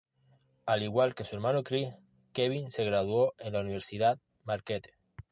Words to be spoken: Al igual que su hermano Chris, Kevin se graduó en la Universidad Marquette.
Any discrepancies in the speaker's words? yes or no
no